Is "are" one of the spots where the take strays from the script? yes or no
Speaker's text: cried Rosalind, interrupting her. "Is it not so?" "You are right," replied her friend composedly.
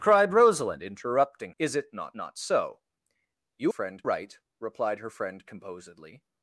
yes